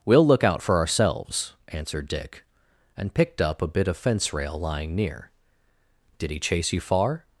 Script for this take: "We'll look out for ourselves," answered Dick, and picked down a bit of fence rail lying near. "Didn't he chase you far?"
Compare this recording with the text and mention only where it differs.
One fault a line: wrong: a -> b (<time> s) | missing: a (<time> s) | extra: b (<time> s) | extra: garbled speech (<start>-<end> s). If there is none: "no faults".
wrong: down -> up (3.4 s)
wrong: Didn't -> Did (6.2 s)